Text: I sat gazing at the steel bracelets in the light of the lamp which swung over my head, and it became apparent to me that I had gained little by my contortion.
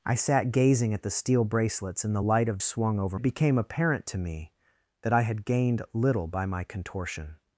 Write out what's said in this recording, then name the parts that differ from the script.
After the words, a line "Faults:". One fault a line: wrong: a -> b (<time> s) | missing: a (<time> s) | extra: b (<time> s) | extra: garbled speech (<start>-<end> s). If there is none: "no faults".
I sat gazing at the steel bracelets in the light of swung over it became apparent to me that I had gained little by my contortion.
Faults:
missing: the lamp which (2.6 s)
missing: my head and (3.2 s)